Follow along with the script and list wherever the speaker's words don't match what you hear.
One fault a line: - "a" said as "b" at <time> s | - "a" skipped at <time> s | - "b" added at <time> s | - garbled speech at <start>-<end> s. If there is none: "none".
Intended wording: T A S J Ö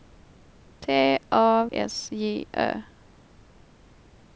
none